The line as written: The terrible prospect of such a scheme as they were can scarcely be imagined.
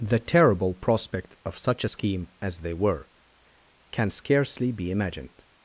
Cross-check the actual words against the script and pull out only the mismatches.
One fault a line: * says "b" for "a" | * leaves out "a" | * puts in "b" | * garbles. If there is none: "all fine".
all fine